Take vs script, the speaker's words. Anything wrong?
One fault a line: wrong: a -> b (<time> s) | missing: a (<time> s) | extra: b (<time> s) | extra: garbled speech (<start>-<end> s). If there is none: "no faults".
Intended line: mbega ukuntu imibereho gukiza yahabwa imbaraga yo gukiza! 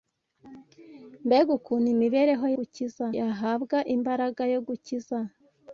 no faults